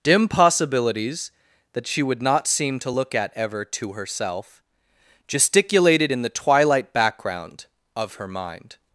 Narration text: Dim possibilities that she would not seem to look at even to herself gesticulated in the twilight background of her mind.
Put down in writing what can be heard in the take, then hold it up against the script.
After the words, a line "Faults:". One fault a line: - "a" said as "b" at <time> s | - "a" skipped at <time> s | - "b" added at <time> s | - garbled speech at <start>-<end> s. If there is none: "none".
Dim possibilities that she would not seem to look at ever to herself gesticulated in the twilight background of her mind.
Faults:
- "even" said as "ever" at 3.3 s